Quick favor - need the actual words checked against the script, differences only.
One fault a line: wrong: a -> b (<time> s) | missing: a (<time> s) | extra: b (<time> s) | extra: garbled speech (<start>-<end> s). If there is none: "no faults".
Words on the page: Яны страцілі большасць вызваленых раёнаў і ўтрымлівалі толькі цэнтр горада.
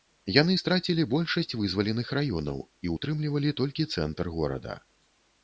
no faults